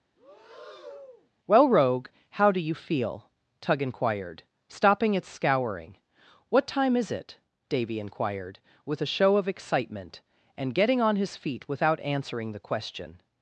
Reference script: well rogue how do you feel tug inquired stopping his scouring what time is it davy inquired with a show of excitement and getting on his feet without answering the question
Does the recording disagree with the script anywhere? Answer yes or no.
yes